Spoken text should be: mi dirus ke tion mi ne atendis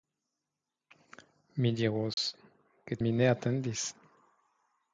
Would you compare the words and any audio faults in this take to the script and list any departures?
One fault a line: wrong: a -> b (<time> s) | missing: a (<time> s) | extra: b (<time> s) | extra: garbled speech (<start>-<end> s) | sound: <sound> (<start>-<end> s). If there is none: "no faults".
sound: dropout (2.1-2.2 s)
missing: tion (3.0 s)